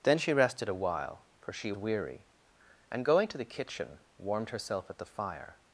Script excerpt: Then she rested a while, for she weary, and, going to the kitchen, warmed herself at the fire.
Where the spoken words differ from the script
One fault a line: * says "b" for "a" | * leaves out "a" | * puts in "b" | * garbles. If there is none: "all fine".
all fine